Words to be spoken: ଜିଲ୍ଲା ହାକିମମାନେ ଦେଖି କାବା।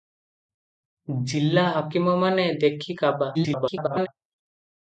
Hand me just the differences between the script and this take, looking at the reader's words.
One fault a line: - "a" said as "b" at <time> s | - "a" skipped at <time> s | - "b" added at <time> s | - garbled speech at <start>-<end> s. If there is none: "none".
- garbled speech at 3.3-4.1 s